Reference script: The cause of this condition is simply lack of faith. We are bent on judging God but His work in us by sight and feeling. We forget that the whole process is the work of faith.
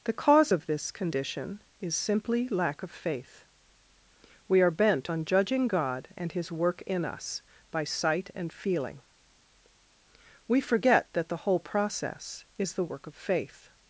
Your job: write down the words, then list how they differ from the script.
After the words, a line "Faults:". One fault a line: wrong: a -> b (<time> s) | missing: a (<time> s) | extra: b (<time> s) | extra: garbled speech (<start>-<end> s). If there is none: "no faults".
The cause of this condition is simply lack of faith. We are bent on judging God and His work in us by sight and feeling. We forget that the whole process is the work of faith.
Faults:
wrong: but -> and (6.1 s)